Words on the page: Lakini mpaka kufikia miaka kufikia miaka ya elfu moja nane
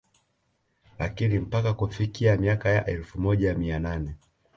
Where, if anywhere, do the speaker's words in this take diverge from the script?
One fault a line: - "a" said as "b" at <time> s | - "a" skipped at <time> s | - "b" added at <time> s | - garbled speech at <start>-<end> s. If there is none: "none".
- "kufikia miaka" skipped at 2.7 s
- "mia" added at 3.5 s